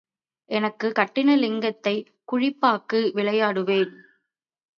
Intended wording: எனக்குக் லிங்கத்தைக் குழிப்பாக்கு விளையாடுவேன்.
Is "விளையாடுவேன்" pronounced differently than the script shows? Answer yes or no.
no